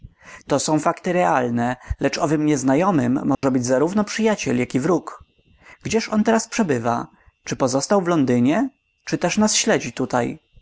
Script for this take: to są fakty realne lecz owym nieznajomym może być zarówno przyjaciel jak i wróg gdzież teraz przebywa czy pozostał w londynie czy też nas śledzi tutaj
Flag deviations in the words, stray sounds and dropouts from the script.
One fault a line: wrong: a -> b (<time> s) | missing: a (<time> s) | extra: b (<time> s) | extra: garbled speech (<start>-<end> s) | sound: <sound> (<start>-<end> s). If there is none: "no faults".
sound: dropout (3.3-3.4 s)
extra: on (6.1 s)